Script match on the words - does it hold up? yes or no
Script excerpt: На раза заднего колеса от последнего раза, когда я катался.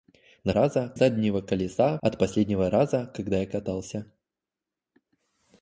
yes